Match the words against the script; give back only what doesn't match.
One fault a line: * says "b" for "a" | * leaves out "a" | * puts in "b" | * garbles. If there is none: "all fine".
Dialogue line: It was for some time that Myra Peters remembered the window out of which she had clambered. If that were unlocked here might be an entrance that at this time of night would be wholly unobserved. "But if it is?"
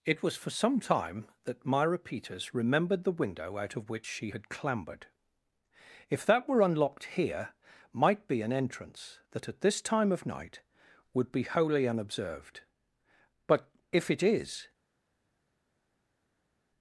all fine